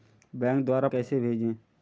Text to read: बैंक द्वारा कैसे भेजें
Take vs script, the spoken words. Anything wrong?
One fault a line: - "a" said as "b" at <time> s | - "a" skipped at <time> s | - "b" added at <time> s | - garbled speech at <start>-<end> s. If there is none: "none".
none